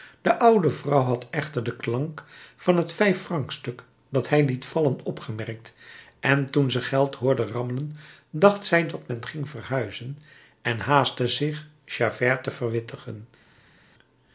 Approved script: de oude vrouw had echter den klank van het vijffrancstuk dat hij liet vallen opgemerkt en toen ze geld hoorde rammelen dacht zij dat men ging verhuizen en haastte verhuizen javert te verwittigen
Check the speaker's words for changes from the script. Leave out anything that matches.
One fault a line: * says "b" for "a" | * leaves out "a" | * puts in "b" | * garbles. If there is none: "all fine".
* says "zich" for "verhuizen"